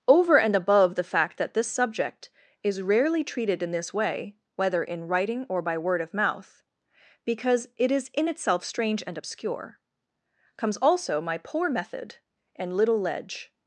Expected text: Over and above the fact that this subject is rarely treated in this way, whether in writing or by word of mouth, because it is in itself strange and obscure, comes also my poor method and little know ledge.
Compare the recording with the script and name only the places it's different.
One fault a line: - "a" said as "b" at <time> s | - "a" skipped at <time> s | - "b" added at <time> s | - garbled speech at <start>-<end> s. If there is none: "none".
- "know" skipped at 13.0 s